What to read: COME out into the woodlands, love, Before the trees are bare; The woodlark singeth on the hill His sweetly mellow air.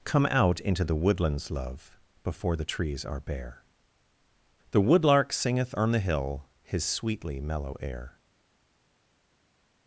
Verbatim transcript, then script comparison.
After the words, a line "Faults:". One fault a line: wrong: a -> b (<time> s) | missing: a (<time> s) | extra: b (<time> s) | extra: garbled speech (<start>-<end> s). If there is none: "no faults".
COME out into the woodlands, love, Before the trees are bare; The woodlark singeth on the hill His sweetly mellow air.
Faults:
no faults